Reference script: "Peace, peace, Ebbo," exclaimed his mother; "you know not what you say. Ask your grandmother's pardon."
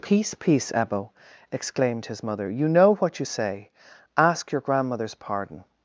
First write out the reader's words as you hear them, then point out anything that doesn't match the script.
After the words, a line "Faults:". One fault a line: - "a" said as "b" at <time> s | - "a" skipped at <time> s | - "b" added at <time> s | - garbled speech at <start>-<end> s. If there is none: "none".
"Peace, peace, Ebbo," exclaimed his mother; "you know what you say. Ask your grandmother's pardon."
Faults:
- "not" skipped at 2.9 s